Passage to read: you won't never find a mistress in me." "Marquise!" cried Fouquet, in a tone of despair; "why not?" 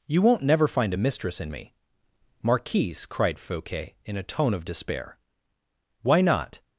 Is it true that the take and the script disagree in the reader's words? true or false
false